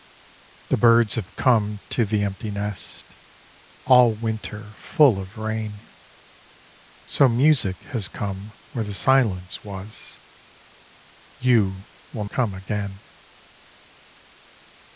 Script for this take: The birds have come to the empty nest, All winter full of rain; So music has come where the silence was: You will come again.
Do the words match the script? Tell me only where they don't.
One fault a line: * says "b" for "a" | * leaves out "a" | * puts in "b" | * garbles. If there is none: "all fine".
all fine